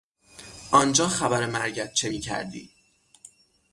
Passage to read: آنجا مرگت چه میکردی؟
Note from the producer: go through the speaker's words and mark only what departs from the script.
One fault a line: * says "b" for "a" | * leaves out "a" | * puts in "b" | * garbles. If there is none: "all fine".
* puts in "خبر"